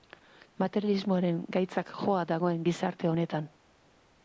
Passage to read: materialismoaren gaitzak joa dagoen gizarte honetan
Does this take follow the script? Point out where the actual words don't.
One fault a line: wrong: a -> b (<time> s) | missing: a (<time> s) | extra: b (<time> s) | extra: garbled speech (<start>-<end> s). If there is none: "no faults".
no faults